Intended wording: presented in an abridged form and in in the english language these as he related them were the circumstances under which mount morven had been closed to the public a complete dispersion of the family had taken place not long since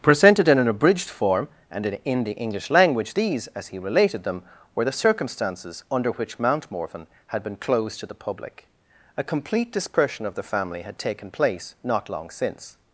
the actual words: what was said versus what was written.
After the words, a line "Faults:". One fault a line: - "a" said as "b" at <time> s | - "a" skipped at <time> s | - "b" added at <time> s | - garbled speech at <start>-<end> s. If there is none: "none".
presented in an abridged form and in in the english language these as he related them were the circumstances under which mount morven had been closed to the public a complete dispersion of the family had taken place not long since
Faults:
none